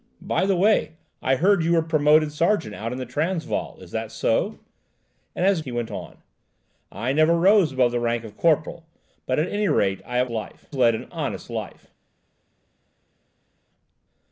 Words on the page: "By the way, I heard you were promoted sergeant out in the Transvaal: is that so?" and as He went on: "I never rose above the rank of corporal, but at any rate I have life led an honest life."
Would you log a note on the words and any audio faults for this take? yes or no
no